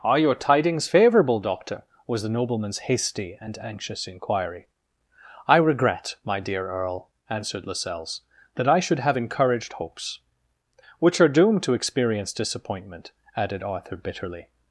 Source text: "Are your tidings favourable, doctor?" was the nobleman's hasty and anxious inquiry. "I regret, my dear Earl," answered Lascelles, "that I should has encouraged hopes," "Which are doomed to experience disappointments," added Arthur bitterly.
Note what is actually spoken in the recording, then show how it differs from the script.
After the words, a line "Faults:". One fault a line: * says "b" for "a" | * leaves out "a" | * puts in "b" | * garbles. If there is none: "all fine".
"Are your tidings favourable, doctor?" was the nobleman's hasty and anxious inquiry. "I regret, my dear Earl," answered Lascelles, "that I should have encouraged hopes," "Which are doomed to experience disappointment," added Arthur bitterly.
Faults:
* says "have" for "has"
* says "disappointment" for "disappointments"